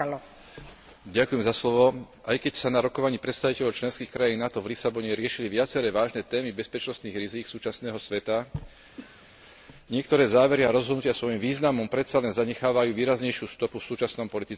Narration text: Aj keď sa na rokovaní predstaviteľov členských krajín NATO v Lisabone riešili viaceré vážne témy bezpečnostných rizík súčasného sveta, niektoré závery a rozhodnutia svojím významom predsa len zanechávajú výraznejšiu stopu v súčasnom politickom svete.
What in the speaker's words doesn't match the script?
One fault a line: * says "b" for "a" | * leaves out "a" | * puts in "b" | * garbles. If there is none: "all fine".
all fine